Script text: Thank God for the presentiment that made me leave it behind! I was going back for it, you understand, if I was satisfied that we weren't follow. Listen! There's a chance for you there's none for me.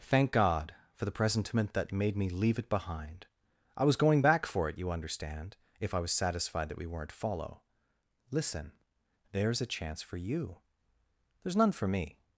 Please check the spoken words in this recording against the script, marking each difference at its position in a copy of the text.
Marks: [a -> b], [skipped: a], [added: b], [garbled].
Thank God for the presentiment that made me leave it behind! I was going back for it, you understand, if I was satisfied that we weren't follow. Listen! There's a chance for you there's none for me.